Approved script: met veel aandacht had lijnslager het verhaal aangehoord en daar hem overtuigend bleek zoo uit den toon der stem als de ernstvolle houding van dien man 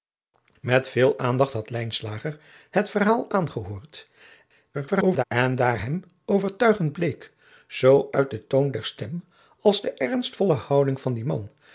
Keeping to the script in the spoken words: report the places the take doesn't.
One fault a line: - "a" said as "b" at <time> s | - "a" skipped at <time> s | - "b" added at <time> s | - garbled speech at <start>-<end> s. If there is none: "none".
- garbled speech at 4.7-5.2 s